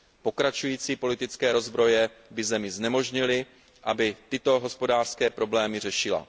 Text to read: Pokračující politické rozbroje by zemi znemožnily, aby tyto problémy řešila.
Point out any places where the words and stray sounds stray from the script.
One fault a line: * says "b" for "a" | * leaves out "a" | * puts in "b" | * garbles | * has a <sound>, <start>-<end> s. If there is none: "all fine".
* puts in "hospodářské"